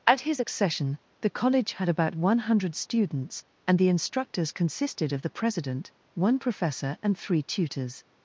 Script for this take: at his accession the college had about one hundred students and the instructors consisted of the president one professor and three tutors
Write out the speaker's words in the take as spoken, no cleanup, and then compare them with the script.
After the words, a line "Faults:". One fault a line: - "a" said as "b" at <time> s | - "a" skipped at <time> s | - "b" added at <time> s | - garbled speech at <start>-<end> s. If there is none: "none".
at his accession the college had about one hundred students and the instructors consisted of the president one professor and three tutors
Faults:
none